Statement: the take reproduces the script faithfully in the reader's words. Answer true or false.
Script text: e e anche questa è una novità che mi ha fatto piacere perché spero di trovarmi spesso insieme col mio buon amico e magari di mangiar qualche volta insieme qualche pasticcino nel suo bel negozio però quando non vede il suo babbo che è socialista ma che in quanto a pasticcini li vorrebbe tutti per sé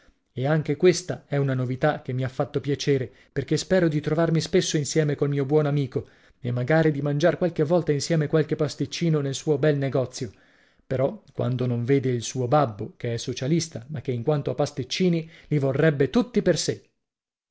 false